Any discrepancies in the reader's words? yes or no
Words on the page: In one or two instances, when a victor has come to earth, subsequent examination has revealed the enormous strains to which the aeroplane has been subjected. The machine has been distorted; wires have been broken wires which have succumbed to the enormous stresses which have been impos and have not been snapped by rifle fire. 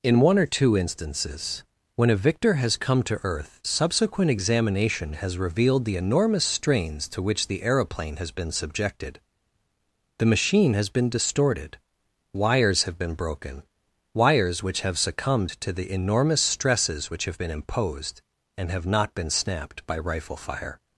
yes